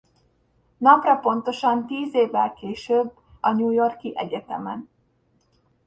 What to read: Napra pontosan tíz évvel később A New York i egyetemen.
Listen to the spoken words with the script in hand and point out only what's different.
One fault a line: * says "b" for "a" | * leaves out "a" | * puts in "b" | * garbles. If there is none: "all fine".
all fine